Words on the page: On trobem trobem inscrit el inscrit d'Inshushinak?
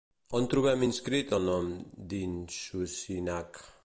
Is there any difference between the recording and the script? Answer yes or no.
yes